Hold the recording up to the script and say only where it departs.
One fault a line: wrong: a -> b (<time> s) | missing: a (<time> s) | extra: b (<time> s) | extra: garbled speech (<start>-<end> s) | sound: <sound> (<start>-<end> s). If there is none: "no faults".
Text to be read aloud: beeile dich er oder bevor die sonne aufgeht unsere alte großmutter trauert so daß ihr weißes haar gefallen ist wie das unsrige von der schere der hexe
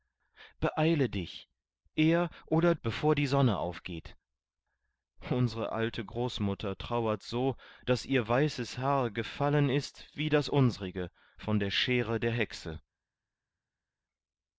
no faults